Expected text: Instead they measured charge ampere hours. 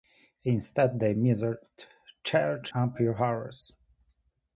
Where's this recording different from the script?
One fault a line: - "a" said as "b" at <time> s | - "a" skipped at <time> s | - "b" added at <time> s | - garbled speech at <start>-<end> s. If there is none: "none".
none